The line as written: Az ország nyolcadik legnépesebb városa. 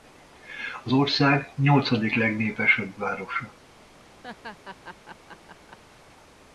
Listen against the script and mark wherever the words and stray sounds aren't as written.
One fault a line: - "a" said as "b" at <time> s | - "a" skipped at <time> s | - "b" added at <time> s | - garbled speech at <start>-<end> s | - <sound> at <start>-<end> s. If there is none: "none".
- laugh at 4.2-5.8 s